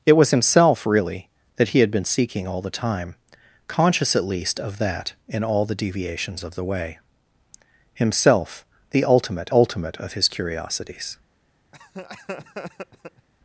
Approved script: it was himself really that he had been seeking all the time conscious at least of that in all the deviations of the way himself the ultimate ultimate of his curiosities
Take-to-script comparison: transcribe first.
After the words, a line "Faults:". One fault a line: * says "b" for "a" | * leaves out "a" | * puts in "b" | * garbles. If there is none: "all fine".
it was himself really that he had been seeking all the time conscious at least of that in all the deviations of the way himself the ultimate ultimate of his curiosities
Faults:
all fine